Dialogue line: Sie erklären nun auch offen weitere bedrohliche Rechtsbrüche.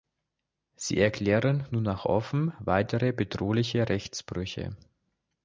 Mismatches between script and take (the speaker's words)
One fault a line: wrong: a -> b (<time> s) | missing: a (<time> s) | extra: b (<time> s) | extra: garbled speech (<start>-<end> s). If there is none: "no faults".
no faults